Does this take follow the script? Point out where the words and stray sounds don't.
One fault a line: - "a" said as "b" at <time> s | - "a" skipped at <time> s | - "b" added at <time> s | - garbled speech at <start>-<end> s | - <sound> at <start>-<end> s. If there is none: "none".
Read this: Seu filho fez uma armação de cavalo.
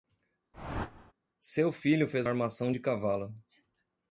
- whoosh at 0.5-1.1 s
- "uma" skipped at 2.3 s